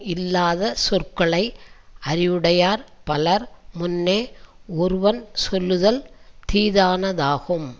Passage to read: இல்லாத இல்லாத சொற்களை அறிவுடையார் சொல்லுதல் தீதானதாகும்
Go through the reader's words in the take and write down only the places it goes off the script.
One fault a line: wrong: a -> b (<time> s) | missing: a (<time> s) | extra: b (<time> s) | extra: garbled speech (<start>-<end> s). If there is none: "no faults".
missing: இல்லாத (0.7 s)
extra: பலர் முன்னே ஒருவன் (3.0 s)